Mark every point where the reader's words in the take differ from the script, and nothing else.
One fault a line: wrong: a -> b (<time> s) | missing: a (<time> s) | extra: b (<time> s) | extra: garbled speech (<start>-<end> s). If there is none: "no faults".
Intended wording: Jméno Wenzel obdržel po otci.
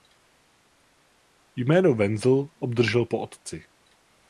no faults